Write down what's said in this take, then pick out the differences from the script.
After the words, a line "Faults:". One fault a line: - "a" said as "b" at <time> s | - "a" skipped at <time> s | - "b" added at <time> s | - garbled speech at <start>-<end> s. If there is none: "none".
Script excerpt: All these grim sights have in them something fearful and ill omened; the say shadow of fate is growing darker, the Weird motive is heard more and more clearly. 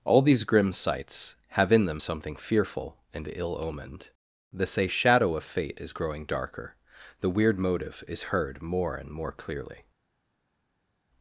All these grim sights have in them something fearful and ill omened; the say shadow of fate is growing darker, the Weird motive is heard more and more clearly.
Faults:
none